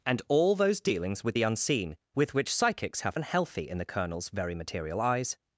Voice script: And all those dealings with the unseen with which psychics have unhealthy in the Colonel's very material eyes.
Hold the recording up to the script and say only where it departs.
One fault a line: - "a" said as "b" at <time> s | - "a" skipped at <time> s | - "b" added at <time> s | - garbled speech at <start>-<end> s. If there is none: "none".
none